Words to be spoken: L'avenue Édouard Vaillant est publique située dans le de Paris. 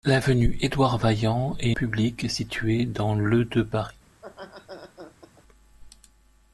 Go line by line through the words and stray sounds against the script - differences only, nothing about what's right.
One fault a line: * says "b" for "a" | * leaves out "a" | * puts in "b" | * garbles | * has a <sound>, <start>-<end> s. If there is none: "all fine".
* has a laugh, 4.1-5.4 s